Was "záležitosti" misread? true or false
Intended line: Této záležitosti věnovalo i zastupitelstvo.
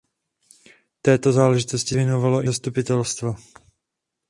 false